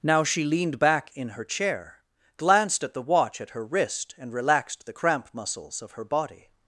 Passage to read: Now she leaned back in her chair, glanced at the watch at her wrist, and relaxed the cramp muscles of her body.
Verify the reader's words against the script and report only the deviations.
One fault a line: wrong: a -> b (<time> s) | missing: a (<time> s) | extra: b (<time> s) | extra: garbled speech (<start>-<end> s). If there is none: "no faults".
no faults